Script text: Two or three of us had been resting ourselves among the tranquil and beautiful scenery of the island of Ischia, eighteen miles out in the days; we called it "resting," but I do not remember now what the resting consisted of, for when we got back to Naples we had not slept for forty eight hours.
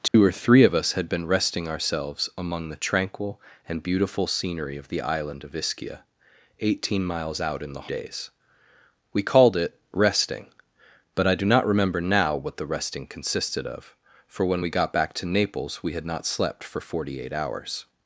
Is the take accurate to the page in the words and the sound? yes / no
no